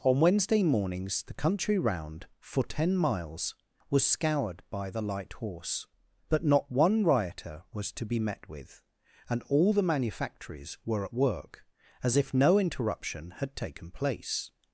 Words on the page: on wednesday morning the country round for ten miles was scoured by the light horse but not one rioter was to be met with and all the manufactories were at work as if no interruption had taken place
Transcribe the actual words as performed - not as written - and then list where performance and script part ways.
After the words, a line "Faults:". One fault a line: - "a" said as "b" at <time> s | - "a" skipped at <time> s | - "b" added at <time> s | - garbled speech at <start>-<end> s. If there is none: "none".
on wednesday mornings the country round for ten miles was scoured by the light horse but not one rioter was to be met with and all the manufactories were at work as if no interruption had taken place
Faults:
- "morning" said as "mornings" at 0.6 s